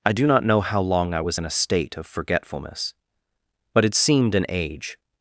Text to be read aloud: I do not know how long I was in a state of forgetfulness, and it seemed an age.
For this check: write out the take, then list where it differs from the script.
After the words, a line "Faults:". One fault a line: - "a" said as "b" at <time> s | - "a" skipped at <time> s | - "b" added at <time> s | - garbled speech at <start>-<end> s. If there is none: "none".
I do not know how long I was in a state of forgetfulness, but it seemed an age.
Faults:
- "and" said as "but" at 3.7 s